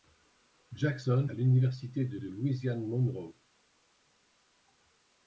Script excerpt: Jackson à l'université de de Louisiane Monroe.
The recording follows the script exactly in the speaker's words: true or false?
true